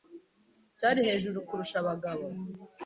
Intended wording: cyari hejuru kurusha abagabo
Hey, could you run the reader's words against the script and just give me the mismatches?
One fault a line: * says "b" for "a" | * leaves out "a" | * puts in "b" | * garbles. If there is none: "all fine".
all fine